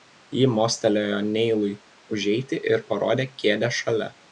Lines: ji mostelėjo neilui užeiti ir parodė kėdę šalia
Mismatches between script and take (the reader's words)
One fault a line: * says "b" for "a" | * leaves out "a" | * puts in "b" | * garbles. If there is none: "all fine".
all fine